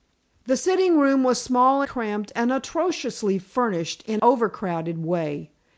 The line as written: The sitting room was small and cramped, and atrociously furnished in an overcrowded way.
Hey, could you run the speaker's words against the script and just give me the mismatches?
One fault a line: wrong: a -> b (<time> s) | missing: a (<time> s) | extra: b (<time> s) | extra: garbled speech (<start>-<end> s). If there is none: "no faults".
missing: and (1.8 s)
missing: an (4.2 s)